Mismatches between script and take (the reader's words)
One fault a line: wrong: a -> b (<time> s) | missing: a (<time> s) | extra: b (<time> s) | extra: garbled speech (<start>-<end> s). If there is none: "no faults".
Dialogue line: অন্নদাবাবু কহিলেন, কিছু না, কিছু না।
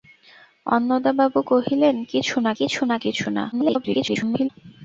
extra: কিছু না (3.0 s)
extra: garbled speech (3.5-4.5 s)